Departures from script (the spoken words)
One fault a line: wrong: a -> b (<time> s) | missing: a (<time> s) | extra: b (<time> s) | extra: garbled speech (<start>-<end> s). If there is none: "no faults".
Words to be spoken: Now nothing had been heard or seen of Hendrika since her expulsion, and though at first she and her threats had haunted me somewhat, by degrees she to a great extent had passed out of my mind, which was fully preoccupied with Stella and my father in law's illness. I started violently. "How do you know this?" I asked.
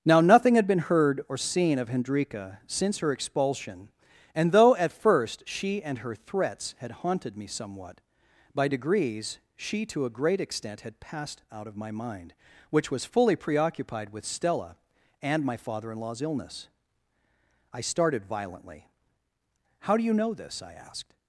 no faults